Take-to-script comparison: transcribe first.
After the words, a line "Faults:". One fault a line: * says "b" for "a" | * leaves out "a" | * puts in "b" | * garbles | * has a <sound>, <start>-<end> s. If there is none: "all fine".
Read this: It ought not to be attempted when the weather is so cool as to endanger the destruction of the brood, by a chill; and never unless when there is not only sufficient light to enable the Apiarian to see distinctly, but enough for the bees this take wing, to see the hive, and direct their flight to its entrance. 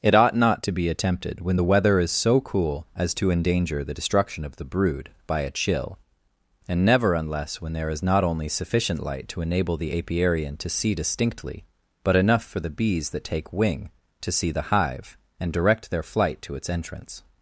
It ought not to be attempted when the weather is so cool as to endanger the destruction of the brood, by a chill; and never unless when there is not only sufficient light to enable the Apiarian to see distinctly, but enough for the bees that take wing, to see the hive, and direct their flight to its entrance.
Faults:
* says "that" for "this"